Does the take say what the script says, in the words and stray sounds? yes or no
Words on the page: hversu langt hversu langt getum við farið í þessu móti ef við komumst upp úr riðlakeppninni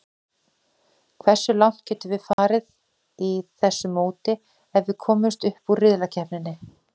no